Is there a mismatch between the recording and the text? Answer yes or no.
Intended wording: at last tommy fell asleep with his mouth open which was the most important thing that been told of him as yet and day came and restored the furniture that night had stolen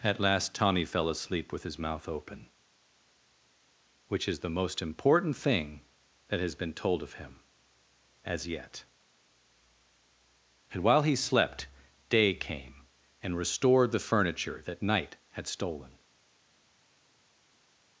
yes